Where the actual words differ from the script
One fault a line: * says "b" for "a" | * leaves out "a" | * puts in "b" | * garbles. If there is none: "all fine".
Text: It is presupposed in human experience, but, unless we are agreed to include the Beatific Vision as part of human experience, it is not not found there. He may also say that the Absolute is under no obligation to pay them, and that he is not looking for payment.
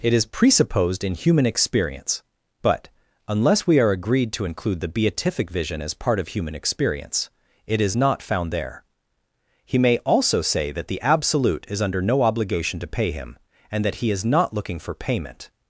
* leaves out "not"
* says "him" for "them"